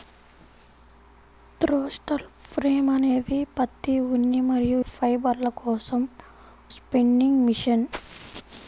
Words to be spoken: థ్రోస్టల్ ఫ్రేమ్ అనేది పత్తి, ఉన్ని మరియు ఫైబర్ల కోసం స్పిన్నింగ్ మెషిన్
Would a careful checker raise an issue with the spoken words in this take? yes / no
no